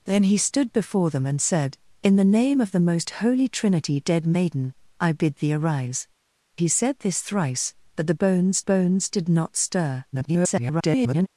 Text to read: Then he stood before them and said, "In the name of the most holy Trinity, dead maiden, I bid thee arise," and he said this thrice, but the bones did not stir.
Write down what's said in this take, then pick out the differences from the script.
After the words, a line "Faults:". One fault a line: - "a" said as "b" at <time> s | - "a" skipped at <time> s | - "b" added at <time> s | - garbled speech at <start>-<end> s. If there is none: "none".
Then he stood before them and said, "In the name of the most holy Trinity, dead maiden, I bid thee arise," he said this thrice, but the bones bones did not stir. [garbled]
Faults:
- "and" skipped at 6.1 s
- "bones" added at 8.6 s
- garbled speech at 10.1-11.3 s